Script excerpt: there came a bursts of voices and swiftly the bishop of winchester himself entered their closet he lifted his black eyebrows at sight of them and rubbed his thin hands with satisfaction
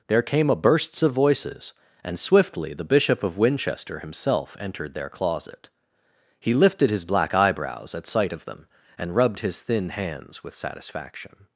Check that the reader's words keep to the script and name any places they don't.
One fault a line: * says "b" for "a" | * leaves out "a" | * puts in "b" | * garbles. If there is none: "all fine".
all fine